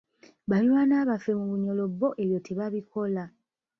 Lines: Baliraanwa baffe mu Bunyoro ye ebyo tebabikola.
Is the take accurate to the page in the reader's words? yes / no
no